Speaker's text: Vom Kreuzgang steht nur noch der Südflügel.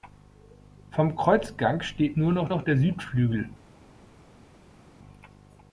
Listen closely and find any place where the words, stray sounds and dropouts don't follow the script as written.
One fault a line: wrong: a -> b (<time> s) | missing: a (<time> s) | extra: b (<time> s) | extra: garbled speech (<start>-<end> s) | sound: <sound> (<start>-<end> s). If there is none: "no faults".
extra: noch (2.5 s)